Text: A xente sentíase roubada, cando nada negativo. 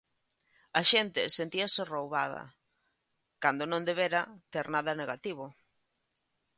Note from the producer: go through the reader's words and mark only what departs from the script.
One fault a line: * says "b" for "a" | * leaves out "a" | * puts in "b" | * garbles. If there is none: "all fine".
* puts in "non debera ter"